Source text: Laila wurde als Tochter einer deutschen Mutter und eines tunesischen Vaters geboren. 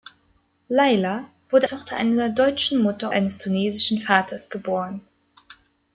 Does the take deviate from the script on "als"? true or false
true